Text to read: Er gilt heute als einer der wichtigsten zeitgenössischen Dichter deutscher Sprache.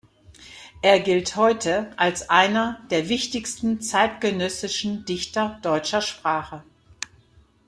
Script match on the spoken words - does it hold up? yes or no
yes